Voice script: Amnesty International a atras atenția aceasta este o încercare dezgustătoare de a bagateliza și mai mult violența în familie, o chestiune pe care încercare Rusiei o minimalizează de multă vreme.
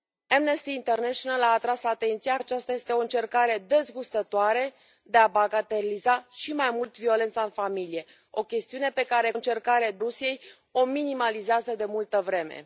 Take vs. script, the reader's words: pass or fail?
pass